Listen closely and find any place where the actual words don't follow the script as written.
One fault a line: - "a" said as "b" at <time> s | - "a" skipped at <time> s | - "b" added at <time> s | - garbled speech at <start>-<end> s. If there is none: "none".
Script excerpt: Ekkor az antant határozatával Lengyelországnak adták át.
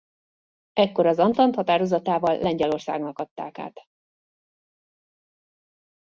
none